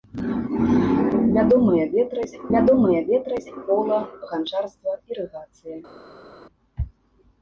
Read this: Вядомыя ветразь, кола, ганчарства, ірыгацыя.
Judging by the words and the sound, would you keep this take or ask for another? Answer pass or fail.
fail